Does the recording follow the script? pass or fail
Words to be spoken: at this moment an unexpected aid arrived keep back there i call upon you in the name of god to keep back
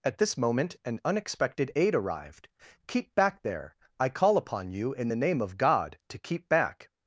pass